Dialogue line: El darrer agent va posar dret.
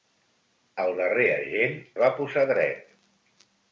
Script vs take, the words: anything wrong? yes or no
no